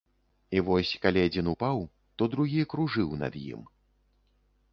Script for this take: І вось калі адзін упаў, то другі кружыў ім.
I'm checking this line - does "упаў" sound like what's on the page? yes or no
yes